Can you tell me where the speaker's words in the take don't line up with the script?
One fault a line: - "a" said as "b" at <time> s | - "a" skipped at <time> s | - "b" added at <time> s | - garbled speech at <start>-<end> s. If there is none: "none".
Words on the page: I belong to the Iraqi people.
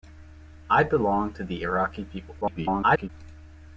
- garbled speech at 2.4-3.1 s